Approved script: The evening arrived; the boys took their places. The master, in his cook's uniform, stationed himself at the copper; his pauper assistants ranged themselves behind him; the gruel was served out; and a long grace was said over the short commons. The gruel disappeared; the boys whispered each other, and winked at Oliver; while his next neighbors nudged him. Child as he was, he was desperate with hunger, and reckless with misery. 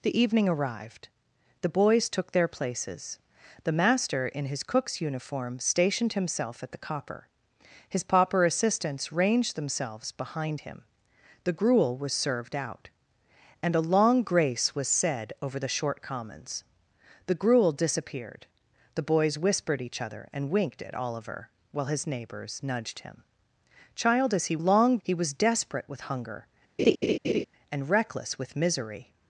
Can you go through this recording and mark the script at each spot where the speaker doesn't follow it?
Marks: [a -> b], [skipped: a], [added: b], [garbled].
The evening arrived; the boys took their places. The master, in his cook's uniform, stationed himself at the copper; his pauper assistants ranged themselves behind him; the gruel was served out; and a long grace was said over the short commons. The gruel disappeared; the boys whispered each other, and winked at Oliver; while his [skipped: next] neighbors nudged him. Child as he [was, -> long] he was desperate with hunger, and reckless with misery.